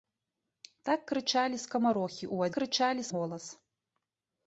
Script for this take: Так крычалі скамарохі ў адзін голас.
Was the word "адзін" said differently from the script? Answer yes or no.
yes